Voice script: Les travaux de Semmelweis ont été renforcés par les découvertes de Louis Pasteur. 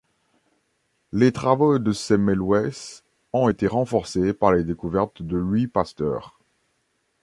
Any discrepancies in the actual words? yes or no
no